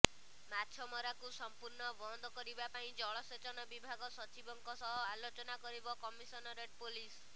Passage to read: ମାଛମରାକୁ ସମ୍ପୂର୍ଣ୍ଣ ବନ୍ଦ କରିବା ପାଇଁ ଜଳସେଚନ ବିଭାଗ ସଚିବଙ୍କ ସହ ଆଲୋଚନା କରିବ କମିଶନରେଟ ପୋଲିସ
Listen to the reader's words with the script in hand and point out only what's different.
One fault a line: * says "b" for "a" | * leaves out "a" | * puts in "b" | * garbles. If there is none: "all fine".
all fine